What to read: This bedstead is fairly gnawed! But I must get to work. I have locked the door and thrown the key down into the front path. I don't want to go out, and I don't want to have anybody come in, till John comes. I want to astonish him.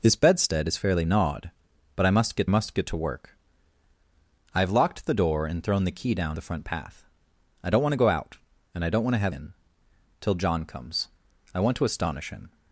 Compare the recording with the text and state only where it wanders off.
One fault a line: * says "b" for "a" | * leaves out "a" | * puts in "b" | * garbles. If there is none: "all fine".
* puts in "must get"
* leaves out "into"
* leaves out "anybody come"